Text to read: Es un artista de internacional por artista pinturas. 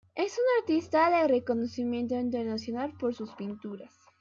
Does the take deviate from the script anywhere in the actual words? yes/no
yes